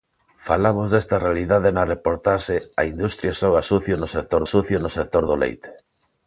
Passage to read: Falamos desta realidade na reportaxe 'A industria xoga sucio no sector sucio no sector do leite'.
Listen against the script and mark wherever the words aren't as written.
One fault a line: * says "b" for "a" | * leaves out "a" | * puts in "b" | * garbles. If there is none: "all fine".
all fine